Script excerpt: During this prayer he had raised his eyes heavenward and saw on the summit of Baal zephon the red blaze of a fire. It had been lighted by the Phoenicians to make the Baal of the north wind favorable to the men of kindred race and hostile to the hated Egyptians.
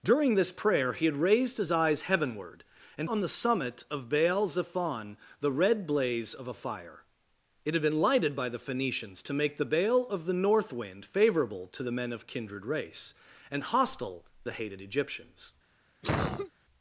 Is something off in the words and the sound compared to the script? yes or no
yes